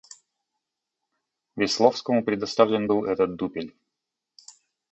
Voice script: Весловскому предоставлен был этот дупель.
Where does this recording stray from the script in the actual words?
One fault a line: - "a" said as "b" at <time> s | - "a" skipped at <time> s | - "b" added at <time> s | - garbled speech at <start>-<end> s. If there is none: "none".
none